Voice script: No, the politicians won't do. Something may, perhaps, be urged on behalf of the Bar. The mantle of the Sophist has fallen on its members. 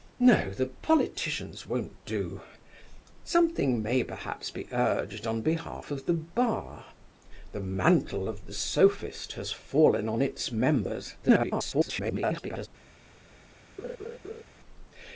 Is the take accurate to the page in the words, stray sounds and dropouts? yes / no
no